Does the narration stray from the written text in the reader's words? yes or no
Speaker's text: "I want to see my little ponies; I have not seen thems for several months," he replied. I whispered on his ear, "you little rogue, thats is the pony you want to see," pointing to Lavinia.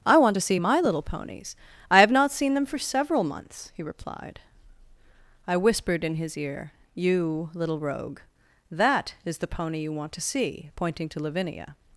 yes